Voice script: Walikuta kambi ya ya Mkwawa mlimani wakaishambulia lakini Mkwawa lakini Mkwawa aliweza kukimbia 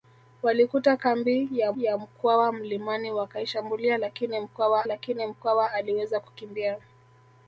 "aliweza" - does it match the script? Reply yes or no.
yes